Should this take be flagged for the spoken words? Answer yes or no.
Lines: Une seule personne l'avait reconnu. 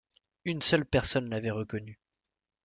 no